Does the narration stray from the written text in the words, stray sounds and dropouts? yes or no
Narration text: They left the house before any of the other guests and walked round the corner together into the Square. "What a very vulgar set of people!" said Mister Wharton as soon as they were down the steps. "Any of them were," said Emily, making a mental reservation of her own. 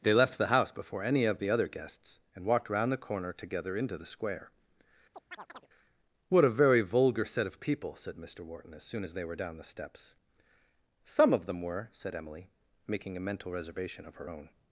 yes